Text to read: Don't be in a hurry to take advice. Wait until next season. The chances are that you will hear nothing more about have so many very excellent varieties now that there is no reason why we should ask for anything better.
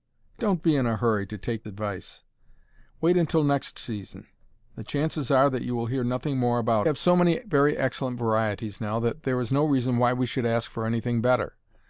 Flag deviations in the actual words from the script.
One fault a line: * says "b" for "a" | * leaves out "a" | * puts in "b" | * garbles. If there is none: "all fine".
all fine